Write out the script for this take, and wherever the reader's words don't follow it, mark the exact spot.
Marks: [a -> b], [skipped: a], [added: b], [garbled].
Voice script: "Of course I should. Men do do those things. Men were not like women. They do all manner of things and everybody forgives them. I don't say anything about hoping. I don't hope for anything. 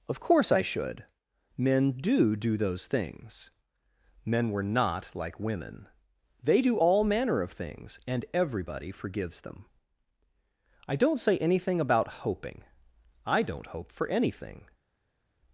"Of course I should. Men do do those things. Men were not like women. They do all manner of things and everybody forgives them. I don't say anything about hoping. I don't hope for anything.